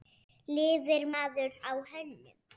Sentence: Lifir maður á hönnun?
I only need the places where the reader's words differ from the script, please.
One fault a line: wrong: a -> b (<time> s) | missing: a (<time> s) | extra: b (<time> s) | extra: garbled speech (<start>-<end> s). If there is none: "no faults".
no faults